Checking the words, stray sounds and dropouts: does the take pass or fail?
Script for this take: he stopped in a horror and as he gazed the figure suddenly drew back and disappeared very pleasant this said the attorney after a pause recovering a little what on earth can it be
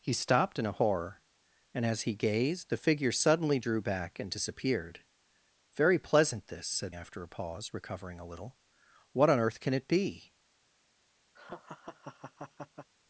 fail